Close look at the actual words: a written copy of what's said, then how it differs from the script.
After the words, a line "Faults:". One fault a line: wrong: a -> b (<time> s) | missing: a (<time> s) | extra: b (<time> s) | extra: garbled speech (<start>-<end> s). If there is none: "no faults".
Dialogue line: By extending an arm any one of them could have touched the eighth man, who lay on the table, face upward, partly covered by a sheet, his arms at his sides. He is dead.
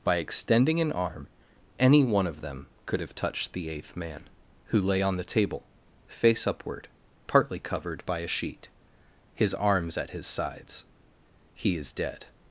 By extending an arm any one of them could have touched the eighth man, who lay on the table, face upward, partly covered by a sheet, his arms at his sides. He is dead.
Faults:
no faults